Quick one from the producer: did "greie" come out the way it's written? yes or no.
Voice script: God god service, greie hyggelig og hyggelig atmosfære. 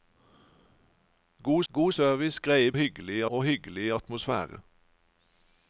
yes